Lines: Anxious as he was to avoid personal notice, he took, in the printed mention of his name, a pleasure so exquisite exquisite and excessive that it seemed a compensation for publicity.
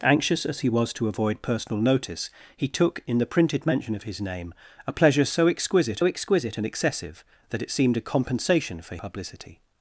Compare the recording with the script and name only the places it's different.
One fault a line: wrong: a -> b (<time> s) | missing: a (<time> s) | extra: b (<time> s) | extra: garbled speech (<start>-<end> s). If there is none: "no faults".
no faults